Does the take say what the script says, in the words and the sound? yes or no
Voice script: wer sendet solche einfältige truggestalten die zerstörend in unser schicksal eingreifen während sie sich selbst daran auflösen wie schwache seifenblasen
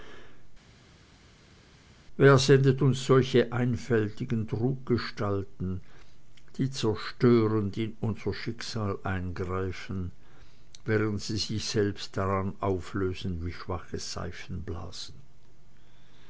no